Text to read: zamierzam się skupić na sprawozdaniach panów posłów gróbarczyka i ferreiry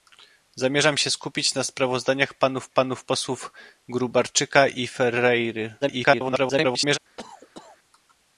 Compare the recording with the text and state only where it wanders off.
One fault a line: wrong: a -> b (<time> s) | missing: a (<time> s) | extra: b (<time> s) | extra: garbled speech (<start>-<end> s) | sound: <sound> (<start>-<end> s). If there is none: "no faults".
extra: panów (2.7 s)
extra: garbled speech (5.8-7.0 s)
sound: cough (7.2-7.8 s)